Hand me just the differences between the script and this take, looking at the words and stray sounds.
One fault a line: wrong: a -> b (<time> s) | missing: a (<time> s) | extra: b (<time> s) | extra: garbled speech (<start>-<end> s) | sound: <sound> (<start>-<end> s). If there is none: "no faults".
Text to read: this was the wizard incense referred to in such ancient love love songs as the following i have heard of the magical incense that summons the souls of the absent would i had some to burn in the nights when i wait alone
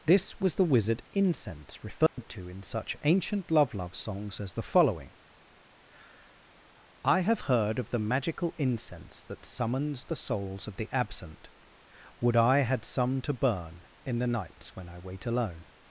sound: dropout (2.1-2.2 s)